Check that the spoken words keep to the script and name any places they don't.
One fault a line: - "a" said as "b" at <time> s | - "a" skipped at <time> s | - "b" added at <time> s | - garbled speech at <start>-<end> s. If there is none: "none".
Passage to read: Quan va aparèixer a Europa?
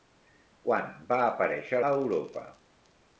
none